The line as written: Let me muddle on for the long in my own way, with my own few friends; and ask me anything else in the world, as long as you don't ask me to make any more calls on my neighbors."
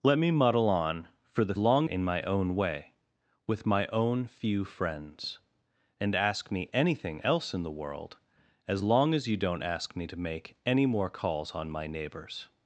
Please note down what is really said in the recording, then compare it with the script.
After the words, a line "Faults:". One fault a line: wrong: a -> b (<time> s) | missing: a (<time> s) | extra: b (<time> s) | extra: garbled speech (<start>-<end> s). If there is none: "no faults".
Let me muddle on for the long in my own way, with my own few friends; and ask me anything else in the world, as long as you don't ask me to make any more calls on my neighbors."
Faults:
no faults